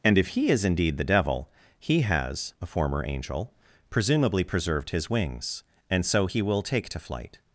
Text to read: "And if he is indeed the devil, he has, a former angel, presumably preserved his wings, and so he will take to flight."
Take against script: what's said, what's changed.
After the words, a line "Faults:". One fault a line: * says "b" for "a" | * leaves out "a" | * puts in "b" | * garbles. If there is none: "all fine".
"And if he is indeed the devil, he has, a former angel, presumably preserved his wings, and so he will take to flight."
Faults:
all fine